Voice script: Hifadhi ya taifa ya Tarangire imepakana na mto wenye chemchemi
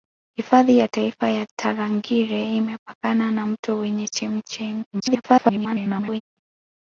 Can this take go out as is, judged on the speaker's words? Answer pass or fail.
fail